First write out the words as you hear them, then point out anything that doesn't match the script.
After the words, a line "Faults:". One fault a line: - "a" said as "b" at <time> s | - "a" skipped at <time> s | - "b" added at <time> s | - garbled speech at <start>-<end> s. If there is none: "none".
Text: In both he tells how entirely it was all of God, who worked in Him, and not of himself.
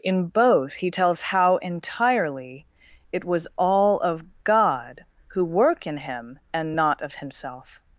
In both he tells how entirely it was all of God, who work in Him, and not of himself.
Faults:
- "worked" said as "work" at 5.5 s